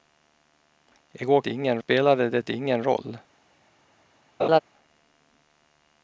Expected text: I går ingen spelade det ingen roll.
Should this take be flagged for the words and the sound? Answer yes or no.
yes